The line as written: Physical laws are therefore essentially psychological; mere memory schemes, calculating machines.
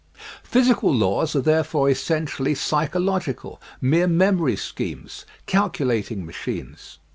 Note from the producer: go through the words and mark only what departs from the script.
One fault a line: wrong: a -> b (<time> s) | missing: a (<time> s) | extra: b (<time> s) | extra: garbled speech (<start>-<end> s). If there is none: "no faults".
no faults